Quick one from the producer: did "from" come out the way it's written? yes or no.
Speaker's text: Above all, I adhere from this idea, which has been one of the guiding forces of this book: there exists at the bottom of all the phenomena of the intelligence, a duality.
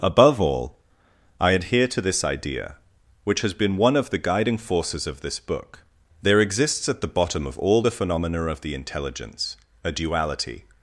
no